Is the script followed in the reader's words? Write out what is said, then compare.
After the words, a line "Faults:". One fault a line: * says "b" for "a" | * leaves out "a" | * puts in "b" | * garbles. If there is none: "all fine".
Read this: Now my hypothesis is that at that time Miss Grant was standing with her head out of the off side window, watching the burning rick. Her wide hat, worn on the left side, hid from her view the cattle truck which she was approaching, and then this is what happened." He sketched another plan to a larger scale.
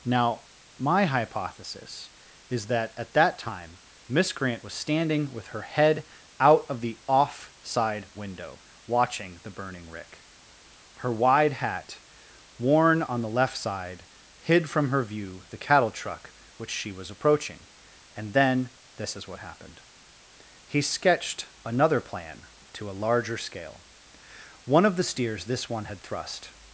Now my hypothesis is that at that time Miss Grant was standing with her head out of the off side window, watching the burning rick. Her wide hat, worn on the left side, hid from her view the cattle truck which she was approaching, and then this is what happened." He sketched another plan to a larger scale. "One of the steers this one had thrust
Faults:
* puts in "One of the steers this one had thrust"